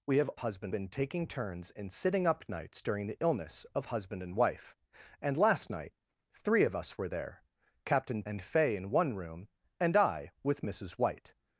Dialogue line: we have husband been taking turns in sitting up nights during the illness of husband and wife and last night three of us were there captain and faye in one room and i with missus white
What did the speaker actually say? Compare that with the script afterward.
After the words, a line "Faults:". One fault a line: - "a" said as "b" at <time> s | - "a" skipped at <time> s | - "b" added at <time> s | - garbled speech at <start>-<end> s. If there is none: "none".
we have husband been taking turns in sitting up nights during the illness of husband and wife and last night three of us were there captain and faye in one room and i with missus white
Faults:
none